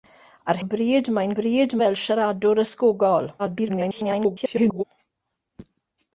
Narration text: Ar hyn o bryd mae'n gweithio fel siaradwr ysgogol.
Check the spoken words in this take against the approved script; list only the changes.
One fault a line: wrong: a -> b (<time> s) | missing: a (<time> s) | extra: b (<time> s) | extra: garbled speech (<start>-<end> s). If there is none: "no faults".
missing: hyn (0.6 s)
wrong: gweithio -> bryd (1.4 s)
extra: garbled speech (3.4-4.8 s)